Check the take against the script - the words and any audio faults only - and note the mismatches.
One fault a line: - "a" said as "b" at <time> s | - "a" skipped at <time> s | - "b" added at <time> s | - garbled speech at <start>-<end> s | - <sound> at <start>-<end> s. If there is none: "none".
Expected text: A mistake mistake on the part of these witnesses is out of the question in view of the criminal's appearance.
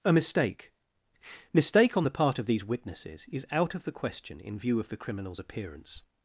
none